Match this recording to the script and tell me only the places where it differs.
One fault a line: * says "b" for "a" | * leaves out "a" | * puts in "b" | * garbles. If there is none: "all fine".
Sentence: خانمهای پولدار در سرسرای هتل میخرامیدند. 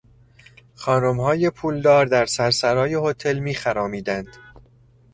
all fine